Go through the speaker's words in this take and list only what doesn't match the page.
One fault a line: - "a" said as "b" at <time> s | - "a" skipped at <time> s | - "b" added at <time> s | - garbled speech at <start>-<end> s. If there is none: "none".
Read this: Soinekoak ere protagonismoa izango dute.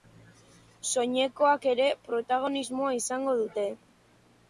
none